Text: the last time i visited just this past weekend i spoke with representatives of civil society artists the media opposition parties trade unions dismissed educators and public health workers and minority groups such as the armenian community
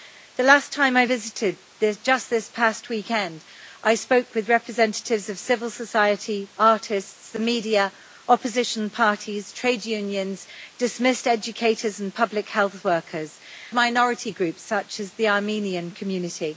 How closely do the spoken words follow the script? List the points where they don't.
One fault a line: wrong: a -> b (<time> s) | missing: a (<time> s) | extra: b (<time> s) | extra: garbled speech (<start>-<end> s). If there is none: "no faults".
missing: and (13.4 s)